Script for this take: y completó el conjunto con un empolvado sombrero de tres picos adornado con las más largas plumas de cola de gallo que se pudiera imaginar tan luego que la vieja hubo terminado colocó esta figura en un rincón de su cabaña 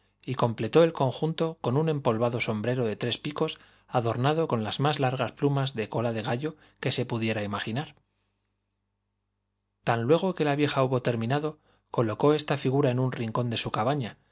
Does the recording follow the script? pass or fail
pass